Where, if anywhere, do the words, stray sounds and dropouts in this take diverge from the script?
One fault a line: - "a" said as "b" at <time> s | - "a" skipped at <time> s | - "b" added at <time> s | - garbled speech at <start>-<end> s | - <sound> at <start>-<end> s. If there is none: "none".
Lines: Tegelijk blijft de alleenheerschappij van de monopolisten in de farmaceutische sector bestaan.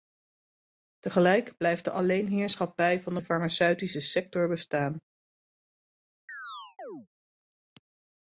- "monopolisten in" skipped at 3.2 s
- chirp at 6.3-7.1 s